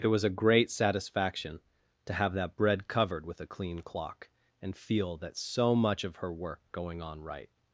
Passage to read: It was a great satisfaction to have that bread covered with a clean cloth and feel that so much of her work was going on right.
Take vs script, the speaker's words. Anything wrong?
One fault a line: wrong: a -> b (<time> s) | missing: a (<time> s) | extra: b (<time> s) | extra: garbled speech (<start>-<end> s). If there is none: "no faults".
wrong: cloth -> clock (3.8 s)
missing: was (6.6 s)